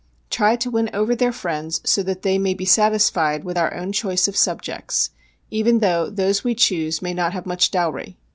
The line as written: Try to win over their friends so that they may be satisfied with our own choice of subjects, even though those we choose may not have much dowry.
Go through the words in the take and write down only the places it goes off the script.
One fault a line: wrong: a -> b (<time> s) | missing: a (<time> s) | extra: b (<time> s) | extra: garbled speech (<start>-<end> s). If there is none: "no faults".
no faults